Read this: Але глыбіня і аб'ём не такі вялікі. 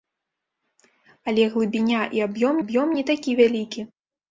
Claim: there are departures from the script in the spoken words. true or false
true